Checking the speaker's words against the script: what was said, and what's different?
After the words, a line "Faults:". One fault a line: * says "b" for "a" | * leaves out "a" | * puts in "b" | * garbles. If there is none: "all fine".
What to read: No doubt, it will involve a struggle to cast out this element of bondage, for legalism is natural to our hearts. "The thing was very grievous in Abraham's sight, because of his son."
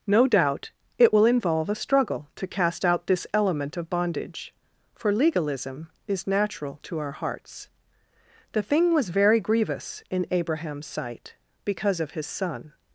No doubt, it will involve a struggle to cast out this element of bondage, for legalism is natural to our hearts. "The thing was very grievous in Abraham's sight, because of his son."
Faults:
all fine